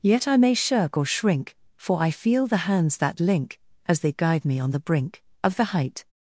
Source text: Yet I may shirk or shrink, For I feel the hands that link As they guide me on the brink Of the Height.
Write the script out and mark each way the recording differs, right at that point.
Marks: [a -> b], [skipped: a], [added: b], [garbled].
Yet I may shirk or shrink, For I feel the hands that link As they guide me on the brink Of the Height.